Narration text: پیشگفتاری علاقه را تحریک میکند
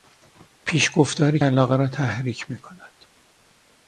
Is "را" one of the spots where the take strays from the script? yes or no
no